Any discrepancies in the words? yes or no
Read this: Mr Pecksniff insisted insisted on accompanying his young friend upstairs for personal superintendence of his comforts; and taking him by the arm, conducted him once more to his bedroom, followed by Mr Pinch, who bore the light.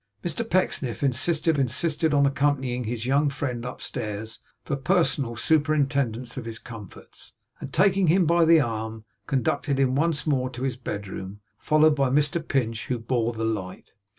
no